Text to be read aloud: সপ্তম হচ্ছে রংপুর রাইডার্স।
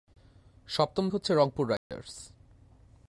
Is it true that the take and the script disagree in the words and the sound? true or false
true